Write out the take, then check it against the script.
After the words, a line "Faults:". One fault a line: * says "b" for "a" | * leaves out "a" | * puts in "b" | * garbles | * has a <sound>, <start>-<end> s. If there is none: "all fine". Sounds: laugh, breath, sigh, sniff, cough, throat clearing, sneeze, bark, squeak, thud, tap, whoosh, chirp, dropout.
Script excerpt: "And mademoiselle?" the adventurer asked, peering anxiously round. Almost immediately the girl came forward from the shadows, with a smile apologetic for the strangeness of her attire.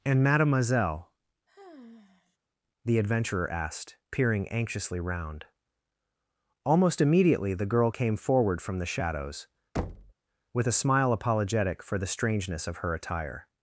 "And mademoiselle?" the adventurer asked, peering anxiously round. Almost immediately the girl came forward from the shadows, with a smile apologetic for the strangeness of her attire.
Faults:
* has a sigh, 1.5-2.4 s
* has a thud, 9.8-10.1 s